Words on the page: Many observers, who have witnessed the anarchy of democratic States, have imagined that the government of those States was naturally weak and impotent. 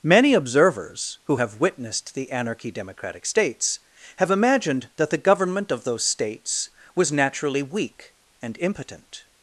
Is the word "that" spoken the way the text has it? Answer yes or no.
yes